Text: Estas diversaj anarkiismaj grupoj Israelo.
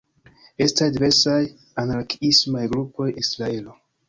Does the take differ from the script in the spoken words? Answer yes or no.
no